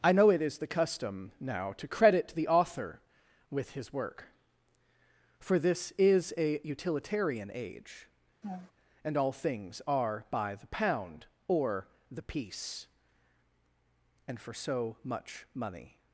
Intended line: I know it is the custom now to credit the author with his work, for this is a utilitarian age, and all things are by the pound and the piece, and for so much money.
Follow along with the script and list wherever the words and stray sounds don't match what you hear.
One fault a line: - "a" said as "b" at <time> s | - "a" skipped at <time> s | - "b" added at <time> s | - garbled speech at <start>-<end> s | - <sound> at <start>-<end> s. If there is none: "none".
- laugh at 8.4-8.7 s
- "and" said as "or" at 11.5 s